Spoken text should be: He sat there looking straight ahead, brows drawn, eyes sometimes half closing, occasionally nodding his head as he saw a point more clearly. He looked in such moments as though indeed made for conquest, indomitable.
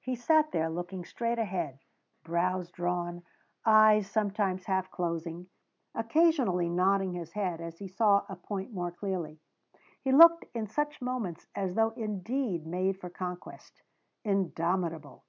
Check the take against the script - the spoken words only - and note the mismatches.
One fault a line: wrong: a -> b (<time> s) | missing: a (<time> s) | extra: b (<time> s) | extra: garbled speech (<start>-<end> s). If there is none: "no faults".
no faults